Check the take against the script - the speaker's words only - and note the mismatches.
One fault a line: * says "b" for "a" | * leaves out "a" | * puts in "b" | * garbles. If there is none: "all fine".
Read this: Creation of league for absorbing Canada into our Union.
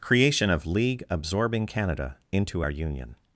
* leaves out "for"